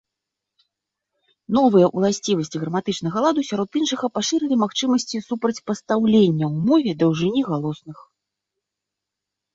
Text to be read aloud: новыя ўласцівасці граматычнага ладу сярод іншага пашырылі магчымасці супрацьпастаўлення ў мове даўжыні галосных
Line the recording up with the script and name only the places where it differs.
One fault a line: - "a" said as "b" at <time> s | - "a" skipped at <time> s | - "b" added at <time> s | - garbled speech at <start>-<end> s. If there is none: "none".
none